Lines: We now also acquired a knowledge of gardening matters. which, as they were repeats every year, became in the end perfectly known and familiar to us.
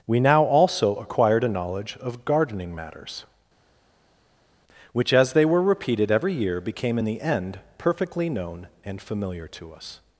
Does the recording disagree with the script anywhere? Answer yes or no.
yes